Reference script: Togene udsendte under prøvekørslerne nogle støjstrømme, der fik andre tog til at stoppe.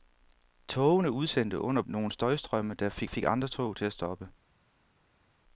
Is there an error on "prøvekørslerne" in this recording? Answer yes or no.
yes